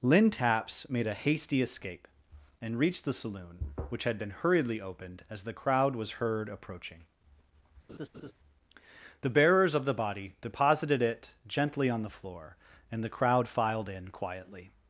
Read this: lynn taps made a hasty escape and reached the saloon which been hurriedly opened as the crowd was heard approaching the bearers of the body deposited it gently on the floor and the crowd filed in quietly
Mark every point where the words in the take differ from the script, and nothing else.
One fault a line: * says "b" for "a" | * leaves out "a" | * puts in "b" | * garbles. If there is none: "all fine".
* puts in "had"